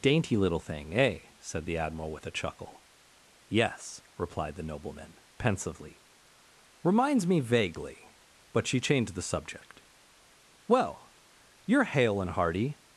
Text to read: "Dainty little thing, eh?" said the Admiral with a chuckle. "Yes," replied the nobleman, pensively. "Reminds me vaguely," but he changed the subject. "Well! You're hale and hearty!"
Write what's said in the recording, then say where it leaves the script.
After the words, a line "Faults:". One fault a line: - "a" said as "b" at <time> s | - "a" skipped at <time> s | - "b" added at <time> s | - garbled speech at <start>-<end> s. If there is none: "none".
"Dainty little thing, eh?" said the Admiral with a chuckle. "Yes," replied the nobleman, pensively. "Reminds me vaguely," but she changed the subject. "Well! You're hale and hearty!"
Faults:
- "he" said as "she" at 8.6 s